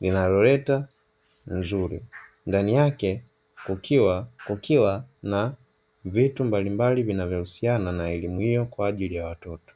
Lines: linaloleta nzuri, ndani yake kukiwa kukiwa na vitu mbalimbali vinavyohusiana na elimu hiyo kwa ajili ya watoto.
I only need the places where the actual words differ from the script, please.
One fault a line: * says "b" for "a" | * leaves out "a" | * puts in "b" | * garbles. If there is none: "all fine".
all fine